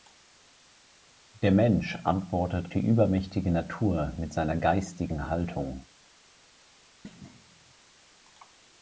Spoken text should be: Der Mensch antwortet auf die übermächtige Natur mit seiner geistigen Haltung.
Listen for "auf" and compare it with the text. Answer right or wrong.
wrong